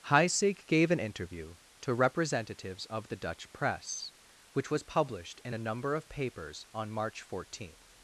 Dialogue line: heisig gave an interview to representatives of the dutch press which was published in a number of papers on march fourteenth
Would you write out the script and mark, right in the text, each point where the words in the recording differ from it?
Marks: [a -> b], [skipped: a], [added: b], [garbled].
heisig gave an interview to representatives of the dutch press which was published in a number of papers on march fourteenth